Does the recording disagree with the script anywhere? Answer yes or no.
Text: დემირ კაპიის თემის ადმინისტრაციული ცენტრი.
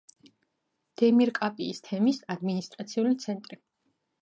no